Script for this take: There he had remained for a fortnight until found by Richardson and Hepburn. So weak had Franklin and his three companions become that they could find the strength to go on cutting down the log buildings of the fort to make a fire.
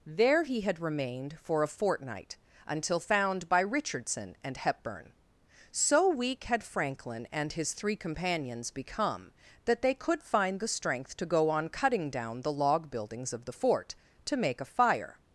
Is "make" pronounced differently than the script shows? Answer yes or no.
no